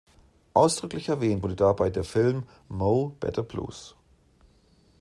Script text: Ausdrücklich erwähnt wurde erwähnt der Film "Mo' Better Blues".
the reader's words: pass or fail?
fail